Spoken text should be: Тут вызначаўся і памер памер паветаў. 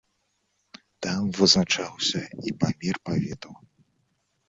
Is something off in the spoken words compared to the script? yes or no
yes